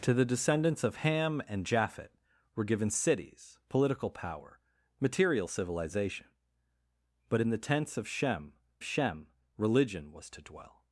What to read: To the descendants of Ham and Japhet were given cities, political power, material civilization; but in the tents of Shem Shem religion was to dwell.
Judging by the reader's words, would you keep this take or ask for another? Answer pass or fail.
pass